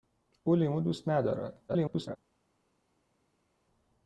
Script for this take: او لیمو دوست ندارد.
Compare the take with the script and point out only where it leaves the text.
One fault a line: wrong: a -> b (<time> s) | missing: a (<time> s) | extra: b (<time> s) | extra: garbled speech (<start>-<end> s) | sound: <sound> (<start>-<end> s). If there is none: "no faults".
extra: garbled speech (1.7-2.2 s)